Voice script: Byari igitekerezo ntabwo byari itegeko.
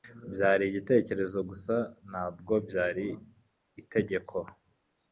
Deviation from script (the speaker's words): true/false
true